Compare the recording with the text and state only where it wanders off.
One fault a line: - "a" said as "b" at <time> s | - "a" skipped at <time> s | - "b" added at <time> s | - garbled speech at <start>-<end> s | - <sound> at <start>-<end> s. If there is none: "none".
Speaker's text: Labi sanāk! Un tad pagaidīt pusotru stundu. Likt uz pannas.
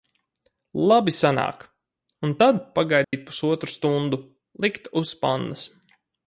- dropout at 3.0-3.1 s